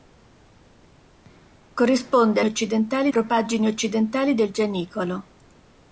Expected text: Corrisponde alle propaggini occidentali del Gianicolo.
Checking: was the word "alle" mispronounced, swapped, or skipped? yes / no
yes